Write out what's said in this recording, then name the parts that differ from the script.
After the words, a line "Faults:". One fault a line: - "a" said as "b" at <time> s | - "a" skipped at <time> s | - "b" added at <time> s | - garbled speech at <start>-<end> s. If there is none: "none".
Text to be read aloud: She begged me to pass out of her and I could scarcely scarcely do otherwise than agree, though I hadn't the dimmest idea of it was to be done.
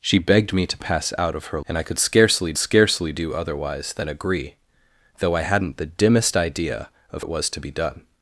She begged me to pass out of her and I could scarcely scarcely do otherwise than agree, though I hadn't the dimmest idea of it was to be done.
Faults:
none